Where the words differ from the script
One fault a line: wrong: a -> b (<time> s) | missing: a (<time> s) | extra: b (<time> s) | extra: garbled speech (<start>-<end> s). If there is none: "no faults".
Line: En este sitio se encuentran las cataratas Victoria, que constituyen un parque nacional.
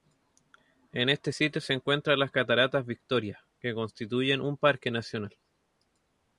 no faults